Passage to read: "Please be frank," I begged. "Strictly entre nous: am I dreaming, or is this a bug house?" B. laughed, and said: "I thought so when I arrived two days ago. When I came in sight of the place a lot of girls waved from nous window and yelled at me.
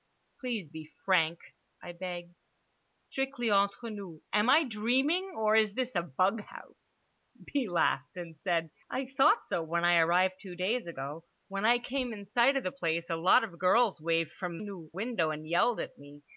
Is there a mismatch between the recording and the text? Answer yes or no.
no